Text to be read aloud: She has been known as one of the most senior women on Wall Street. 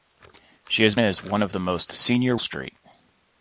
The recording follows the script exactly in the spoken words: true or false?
false